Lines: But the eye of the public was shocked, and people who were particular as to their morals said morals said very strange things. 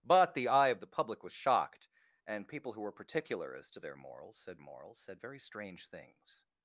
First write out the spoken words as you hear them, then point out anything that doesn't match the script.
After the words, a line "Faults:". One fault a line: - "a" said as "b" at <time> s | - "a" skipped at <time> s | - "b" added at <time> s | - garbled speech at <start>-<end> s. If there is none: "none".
But the eye of the public was shocked, and people who were particular as to their morals said morals said very strange things.
Faults:
none